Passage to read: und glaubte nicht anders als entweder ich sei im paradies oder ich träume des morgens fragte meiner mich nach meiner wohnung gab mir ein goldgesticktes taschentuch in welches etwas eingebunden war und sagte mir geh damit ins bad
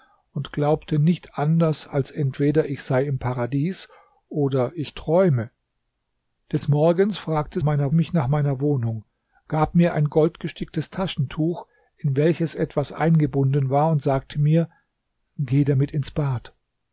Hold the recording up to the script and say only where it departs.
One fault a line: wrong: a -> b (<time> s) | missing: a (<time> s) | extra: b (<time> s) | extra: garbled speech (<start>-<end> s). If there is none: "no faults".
no faults